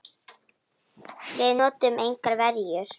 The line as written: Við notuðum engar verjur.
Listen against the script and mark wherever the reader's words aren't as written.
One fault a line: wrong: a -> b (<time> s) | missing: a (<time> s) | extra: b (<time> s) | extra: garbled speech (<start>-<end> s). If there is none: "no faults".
no faults